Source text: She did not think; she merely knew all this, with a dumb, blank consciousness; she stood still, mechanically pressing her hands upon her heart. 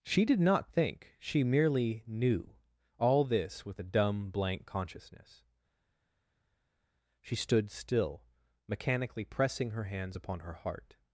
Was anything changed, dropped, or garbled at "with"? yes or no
no